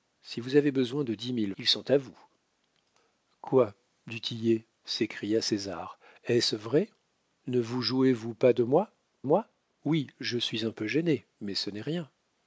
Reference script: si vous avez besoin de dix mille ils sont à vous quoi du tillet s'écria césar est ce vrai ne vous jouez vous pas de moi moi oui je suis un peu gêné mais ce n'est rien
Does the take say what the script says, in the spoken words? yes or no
yes